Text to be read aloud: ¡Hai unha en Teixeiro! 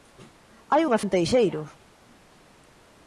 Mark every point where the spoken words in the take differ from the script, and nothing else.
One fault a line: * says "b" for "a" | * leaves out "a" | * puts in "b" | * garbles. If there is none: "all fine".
all fine